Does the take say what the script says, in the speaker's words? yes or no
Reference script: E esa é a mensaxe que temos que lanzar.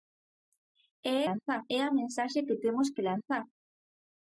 no